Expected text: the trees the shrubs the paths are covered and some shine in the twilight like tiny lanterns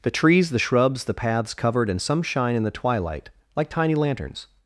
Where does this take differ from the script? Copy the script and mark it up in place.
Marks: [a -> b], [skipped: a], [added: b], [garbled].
the trees the shrubs the paths [skipped: are] covered and some shine in the twilight like tiny lanterns